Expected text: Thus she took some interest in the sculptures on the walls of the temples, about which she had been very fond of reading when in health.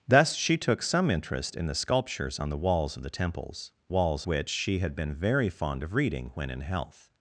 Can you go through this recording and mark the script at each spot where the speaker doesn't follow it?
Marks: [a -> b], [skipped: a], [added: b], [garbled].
Thus she took some interest in the sculptures on the walls of the temples, [about -> walls] which she had been very fond of reading when in health.